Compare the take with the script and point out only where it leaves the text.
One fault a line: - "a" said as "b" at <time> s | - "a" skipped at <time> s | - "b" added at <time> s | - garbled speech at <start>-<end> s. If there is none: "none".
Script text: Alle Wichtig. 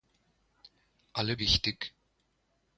none